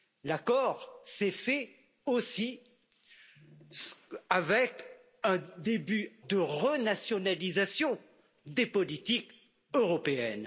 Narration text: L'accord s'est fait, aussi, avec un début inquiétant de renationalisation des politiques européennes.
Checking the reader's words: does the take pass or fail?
fail